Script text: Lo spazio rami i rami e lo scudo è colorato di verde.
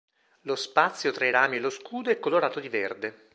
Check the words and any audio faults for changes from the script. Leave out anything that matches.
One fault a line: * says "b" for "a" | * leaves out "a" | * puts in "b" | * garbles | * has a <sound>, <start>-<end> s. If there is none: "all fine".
* says "tra" for "rami"